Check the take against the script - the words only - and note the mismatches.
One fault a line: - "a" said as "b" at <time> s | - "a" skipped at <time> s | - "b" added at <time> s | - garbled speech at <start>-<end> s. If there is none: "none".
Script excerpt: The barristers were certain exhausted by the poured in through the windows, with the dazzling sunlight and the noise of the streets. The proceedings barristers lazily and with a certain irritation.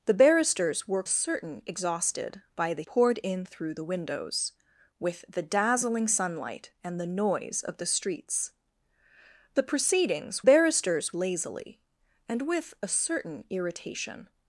none